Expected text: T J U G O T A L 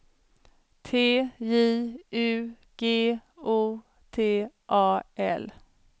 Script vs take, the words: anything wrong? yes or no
no